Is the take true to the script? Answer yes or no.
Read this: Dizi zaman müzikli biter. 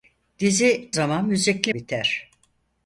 yes